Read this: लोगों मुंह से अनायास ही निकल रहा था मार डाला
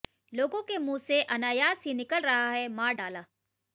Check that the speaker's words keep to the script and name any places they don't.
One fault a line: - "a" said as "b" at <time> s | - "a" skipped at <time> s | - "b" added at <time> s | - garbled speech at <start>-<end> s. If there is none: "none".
- "के" added at 0.6 s
- "था" said as "है" at 2.5 s